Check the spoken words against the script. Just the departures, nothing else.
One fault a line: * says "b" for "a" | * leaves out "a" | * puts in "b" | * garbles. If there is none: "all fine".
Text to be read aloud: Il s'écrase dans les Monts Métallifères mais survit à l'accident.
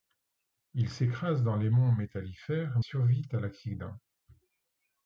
* leaves out "mais"